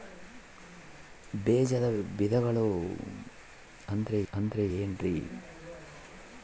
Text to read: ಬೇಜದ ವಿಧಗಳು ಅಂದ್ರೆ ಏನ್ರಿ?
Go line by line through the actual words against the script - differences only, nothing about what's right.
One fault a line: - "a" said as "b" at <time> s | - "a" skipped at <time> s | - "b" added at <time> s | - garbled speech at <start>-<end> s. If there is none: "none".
- "ಅಂದ್ರೆ" added at 4.3 s